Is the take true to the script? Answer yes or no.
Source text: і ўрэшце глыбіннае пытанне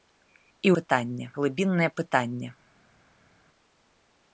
no